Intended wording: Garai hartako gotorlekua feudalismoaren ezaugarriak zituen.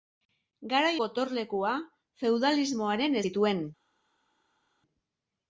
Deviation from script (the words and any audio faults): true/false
true